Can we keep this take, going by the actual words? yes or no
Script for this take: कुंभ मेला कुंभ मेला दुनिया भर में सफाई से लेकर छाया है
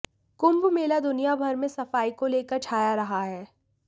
no